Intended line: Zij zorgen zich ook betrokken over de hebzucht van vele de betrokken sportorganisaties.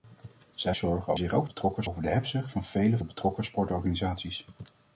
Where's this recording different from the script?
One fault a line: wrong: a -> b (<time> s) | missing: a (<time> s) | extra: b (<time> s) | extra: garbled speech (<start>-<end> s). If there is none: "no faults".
no faults